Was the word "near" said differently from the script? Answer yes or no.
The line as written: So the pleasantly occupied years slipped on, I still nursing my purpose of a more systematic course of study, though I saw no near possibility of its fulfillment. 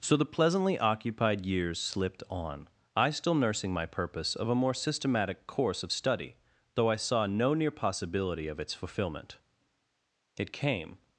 no